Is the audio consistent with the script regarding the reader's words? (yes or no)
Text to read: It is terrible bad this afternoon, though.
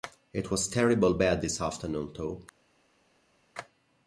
no